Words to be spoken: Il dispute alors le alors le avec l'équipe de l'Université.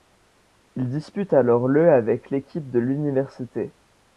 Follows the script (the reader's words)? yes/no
no